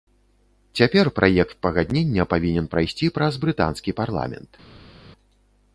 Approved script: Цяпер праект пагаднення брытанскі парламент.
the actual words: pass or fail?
fail